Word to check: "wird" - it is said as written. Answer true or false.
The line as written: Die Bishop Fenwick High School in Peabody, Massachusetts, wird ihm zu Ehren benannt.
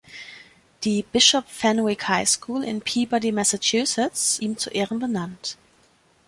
false